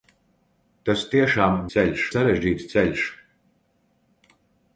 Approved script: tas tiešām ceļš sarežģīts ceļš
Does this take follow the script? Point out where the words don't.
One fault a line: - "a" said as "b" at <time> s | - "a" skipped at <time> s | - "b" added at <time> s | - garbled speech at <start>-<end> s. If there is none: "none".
none